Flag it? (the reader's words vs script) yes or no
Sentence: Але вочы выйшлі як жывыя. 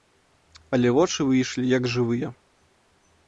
no